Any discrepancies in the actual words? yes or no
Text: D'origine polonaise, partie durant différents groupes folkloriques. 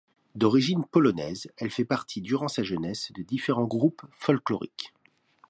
yes